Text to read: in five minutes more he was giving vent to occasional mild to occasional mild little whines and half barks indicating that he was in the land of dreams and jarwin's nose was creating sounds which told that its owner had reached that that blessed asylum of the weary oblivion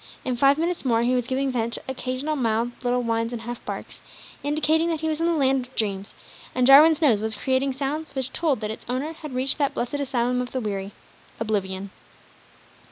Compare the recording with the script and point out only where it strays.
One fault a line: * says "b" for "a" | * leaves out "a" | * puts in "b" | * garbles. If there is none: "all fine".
* leaves out "to occasional mild"
* leaves out "that"